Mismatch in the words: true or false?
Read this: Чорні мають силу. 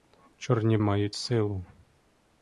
false